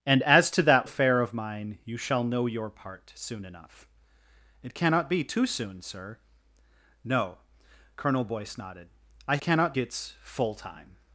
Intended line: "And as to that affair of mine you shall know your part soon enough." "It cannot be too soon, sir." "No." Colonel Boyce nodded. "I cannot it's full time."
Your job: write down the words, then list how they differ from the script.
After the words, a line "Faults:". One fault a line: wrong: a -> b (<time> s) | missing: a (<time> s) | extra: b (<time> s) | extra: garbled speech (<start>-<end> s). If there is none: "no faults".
"And as to that affair of mine you shall know your part soon enough." "It cannot be too soon, sir." "No." Colonel Boyce nodded. "I cannot it's full time."
Faults:
no faults